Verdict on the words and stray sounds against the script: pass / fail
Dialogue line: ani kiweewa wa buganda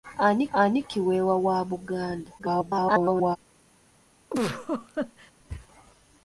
fail